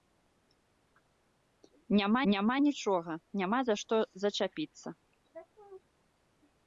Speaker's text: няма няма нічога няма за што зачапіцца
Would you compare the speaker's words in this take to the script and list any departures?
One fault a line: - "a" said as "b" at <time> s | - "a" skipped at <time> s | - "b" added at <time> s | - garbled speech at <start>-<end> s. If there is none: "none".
none